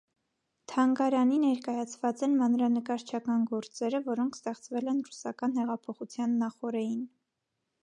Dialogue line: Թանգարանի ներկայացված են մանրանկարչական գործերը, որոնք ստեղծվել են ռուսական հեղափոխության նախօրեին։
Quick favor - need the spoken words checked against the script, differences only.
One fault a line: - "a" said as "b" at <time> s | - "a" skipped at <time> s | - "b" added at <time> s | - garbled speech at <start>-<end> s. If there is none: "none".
none